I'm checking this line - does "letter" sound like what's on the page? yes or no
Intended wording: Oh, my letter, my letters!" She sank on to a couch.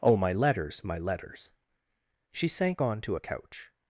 no